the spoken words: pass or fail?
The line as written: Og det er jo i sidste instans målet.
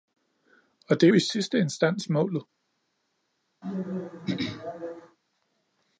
fail